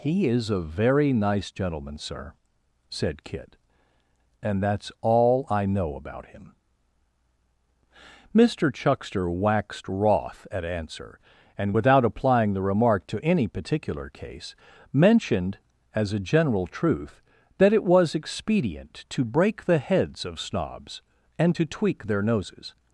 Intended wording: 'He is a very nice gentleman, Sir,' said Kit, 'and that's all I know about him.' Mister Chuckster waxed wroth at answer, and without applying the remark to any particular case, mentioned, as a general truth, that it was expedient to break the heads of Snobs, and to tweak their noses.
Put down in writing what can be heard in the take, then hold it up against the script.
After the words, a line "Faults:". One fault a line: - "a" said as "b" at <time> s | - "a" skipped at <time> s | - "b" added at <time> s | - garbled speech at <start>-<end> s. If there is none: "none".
'He is a very nice gentleman, Sir,' said Kit, 'and that's all I know about him.' Mister Chuckster waxed wroth at answer, and without applying the remark to any particular case, mentioned, as a general truth, that it was expedient to break the heads of Snobs, and to tweak their noses.
Faults:
none